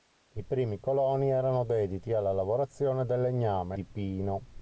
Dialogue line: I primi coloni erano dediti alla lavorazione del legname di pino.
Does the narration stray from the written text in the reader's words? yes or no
no